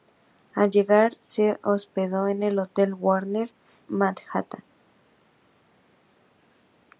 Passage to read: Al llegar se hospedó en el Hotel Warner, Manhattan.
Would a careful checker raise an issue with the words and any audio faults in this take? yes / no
no